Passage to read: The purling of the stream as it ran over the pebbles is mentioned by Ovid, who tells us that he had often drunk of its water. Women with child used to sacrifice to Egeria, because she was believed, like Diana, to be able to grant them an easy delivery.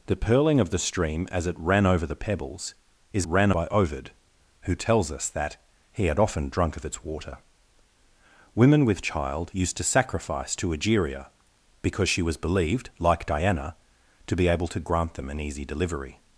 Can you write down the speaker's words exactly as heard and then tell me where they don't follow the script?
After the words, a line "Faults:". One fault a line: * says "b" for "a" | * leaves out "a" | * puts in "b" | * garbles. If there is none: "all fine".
The purling of the stream as it ran over the pebbles is ran by Ovid, who tells us that he had often drunk of its water. Women with child used to sacrifice to Egeria, because she was believed, like Diana, to be able to grant them an easy delivery.
Faults:
* says "ran" for "mentioned"